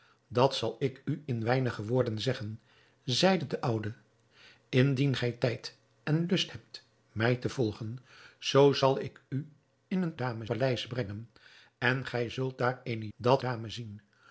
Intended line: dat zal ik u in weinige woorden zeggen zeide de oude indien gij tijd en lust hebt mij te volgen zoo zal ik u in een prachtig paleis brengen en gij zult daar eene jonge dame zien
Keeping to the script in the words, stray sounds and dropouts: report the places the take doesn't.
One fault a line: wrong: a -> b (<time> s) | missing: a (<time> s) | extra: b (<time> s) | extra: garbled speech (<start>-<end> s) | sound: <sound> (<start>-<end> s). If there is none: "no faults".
wrong: prachtig -> dame (10.2 s)
wrong: jonge -> dat (13.2 s)